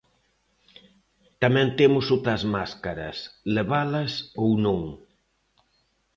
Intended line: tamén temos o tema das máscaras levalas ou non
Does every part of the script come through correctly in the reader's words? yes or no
no